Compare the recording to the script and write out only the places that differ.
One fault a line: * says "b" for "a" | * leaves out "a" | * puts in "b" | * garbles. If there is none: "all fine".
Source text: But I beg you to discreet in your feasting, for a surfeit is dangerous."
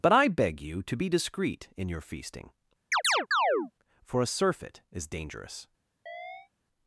* puts in "be"